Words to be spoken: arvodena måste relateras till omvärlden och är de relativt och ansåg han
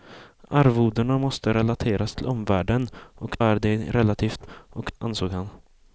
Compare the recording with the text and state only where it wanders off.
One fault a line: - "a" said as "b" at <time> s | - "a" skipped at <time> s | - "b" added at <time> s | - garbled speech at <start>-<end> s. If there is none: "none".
none